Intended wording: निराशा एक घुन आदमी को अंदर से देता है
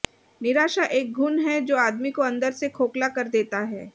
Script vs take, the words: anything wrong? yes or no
yes